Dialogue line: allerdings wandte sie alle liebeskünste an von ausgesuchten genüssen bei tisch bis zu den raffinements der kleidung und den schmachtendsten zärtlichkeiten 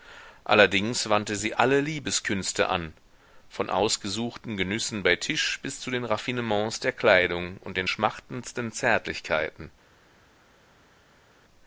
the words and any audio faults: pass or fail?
pass